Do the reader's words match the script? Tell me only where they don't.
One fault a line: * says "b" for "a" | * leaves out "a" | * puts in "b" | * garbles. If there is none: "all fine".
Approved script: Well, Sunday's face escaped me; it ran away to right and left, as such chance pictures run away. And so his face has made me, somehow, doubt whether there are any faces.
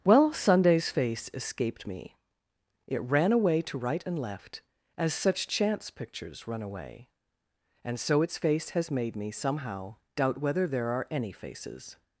* says "its" for "his"